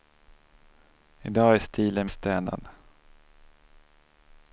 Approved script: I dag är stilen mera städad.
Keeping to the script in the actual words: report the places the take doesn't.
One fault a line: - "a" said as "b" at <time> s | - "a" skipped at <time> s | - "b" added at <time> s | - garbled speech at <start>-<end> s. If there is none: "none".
- "mera" skipped at 2.1 s